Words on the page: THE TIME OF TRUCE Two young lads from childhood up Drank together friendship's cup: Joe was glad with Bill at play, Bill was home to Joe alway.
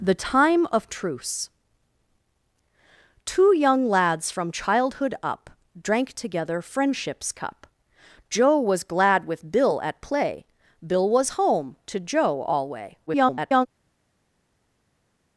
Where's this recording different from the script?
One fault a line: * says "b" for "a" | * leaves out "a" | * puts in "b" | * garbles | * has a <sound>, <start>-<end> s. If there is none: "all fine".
* garbles